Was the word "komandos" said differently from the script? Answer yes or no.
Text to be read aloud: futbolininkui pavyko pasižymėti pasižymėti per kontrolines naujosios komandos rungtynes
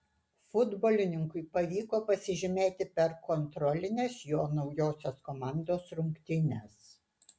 no